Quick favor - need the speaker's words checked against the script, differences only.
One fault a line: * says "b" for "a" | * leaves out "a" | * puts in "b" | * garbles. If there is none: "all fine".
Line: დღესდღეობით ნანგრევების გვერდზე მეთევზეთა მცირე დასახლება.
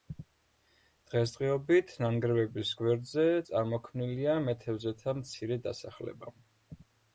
* puts in "წარმოქმნილია"